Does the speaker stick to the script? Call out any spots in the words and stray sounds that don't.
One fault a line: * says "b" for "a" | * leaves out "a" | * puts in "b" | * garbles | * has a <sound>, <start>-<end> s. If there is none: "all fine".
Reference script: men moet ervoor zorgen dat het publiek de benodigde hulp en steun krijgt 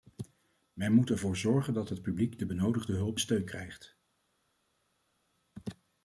* leaves out "en"